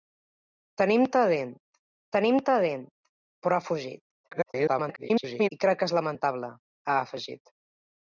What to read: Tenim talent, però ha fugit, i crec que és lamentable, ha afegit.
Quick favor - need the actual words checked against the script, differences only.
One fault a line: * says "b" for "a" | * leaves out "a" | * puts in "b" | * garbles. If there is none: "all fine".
* puts in "tenim talent"
* garbles